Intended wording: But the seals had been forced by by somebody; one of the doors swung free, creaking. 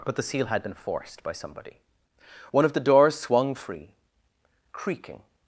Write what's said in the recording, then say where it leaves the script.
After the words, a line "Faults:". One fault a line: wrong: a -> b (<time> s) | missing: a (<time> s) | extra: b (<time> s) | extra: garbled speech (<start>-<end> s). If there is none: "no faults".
But the seal had been forced by somebody; one of the doors swung free, creaking.
Faults:
wrong: seals -> seal (0.2 s)
missing: by (1.3 s)